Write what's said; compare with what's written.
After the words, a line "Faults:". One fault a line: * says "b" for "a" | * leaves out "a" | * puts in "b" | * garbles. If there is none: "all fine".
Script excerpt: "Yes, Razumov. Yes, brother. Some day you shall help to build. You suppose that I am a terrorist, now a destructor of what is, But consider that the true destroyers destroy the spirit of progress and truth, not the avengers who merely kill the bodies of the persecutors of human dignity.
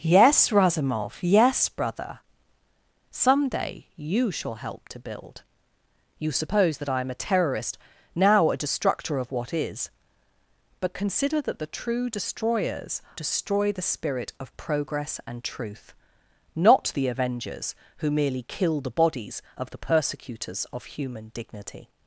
"Yes, Razumov. Yes, brother. Some day you shall help to build. You suppose that I am a terrorist, now a destructor of what is, But consider that the true destroyers destroy the spirit of progress and truth, not the avengers who merely kill the bodies of the persecutors of human dignity.
Faults:
all fine